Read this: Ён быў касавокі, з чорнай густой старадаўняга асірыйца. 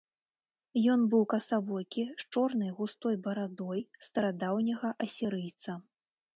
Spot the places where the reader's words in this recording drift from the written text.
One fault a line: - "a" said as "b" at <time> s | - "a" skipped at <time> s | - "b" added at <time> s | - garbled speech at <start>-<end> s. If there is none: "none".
- "барадой" added at 3.3 s